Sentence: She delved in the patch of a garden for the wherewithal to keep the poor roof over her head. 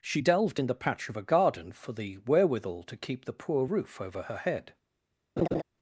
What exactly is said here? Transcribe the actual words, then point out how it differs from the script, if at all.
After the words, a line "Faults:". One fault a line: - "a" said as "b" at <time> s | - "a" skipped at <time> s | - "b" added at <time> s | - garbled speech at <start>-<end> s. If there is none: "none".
She delved in the patch of a garden for the wherewithal to keep the poor roof over her head.
Faults:
none